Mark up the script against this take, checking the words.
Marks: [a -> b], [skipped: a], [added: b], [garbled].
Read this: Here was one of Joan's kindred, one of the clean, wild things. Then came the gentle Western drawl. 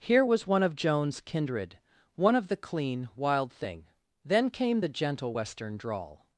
Here was one of Joan's kindred, one of the clean, wild [things. -> thing] Then came the gentle Western drawl.